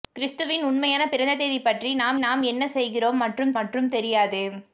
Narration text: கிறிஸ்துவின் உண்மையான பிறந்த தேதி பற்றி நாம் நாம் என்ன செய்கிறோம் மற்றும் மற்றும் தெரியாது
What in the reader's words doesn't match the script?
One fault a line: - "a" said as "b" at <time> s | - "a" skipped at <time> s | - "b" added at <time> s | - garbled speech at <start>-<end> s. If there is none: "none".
none